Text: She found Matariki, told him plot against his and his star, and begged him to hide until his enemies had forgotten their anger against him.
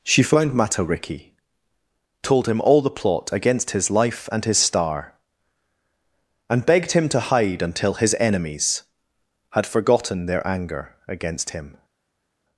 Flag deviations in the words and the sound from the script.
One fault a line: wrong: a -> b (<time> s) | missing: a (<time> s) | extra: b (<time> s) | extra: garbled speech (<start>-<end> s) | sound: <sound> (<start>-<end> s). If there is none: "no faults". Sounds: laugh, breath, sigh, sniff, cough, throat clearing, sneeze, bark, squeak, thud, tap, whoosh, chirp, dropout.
extra: all the (2.6 s)
extra: life (3.9 s)